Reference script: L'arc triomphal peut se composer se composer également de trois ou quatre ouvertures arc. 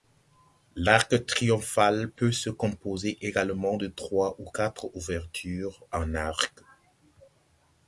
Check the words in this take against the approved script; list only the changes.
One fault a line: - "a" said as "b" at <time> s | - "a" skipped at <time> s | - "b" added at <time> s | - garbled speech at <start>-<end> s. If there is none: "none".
- "se composer" skipped at 3.2 s
- "en" added at 5.9 s